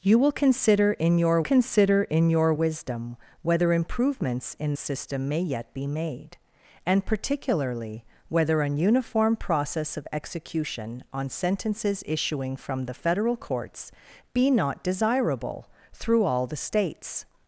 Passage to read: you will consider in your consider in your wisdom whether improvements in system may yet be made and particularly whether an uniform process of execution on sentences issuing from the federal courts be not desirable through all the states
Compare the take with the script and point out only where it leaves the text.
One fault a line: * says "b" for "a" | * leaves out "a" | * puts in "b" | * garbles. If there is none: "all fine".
all fine